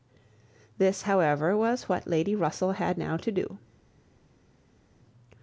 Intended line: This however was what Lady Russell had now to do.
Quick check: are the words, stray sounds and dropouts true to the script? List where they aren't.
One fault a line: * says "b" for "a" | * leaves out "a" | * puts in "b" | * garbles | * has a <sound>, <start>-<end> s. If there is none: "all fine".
all fine